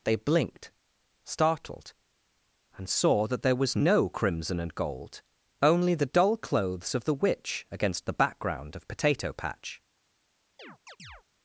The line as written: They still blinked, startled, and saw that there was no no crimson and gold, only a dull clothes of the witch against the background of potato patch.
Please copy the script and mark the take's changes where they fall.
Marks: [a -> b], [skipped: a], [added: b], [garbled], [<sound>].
They [skipped: still] blinked, startled, and saw that there was no [skipped: no] crimson and gold, only [a -> the] dull clothes of the witch against the background of potato patch. [chirp]